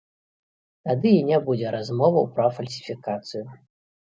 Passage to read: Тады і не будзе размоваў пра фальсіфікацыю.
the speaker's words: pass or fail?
pass